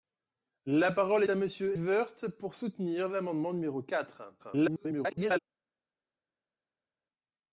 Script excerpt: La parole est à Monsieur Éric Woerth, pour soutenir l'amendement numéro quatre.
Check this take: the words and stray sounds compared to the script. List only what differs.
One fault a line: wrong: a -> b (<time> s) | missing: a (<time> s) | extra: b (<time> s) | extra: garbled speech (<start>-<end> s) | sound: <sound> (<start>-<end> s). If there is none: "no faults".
missing: est (1.2 s)
missing: Éric (1.8 s)
extra: garbled speech (4.4-5.4 s)